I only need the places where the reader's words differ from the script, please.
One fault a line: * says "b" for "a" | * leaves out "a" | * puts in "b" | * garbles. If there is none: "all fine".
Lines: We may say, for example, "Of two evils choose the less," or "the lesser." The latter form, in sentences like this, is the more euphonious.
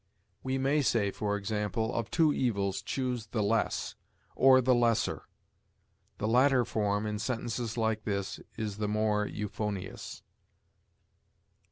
all fine